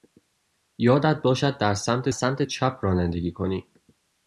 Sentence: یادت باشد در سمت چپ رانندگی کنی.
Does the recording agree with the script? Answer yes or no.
no